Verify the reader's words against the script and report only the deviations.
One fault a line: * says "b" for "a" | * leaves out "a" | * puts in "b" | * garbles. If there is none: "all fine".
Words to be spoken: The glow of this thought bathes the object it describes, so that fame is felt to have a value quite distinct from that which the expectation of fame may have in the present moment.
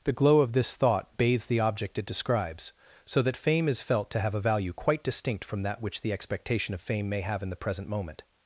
all fine